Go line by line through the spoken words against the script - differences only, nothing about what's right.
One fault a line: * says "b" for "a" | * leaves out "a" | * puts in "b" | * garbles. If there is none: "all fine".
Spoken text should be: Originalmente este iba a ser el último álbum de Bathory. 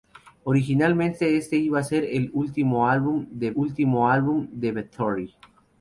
* puts in "último álbum de"